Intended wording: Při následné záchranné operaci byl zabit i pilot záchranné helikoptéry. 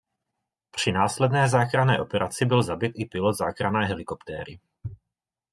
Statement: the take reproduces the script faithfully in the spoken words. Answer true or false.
true